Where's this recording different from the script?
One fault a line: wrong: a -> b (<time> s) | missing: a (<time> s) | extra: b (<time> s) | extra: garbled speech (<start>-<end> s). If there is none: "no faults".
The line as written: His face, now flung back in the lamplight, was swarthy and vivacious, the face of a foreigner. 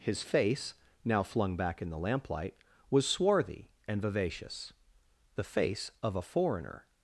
no faults